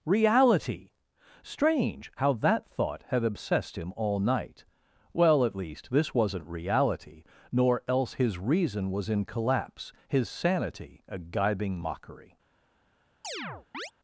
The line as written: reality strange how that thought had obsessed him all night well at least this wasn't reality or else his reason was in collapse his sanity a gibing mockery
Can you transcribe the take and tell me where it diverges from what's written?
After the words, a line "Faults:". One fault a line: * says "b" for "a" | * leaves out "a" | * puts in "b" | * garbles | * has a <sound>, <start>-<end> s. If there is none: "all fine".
reality strange how that thought had obsessed him all night well at least this wasn't reality nor else his reason was in collapse his sanity a gibing mockery
Faults:
* says "nor" for "or"
* has a chirp, 13.2-13.9 s